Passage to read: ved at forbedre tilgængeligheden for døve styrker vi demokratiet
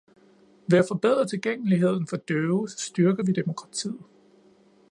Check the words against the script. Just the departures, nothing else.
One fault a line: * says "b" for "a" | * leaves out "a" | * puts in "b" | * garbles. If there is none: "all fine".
all fine